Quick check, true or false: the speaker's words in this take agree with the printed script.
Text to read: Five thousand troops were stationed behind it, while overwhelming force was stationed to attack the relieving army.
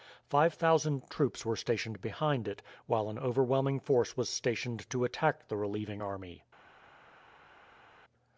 false